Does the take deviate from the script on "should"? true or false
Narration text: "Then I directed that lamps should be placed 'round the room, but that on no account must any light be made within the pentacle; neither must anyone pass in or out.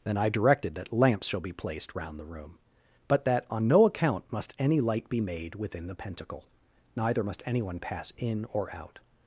true